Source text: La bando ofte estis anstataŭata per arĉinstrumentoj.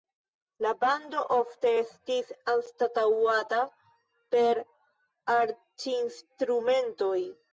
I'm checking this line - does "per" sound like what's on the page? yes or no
yes